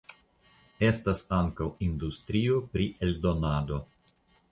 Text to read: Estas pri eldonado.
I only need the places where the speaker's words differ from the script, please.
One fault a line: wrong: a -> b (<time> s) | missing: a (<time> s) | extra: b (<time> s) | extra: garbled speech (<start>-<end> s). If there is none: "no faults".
extra: ankaŭ industrio (1.4 s)